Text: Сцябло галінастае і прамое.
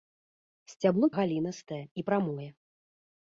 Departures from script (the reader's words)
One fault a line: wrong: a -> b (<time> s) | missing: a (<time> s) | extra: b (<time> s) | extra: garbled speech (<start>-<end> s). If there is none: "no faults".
no faults